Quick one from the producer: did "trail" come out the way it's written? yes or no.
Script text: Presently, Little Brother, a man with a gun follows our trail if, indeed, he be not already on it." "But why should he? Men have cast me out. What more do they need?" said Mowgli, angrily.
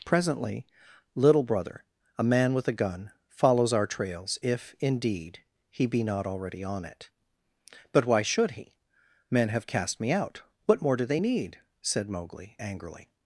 no